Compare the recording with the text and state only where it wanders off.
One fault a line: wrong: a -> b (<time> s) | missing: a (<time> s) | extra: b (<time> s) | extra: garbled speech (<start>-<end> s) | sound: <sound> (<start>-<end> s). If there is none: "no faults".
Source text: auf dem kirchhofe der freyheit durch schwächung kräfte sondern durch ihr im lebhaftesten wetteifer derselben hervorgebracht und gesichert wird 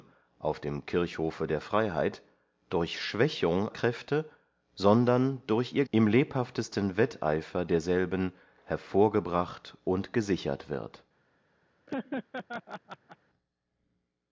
sound: laugh (11.9-13.2 s)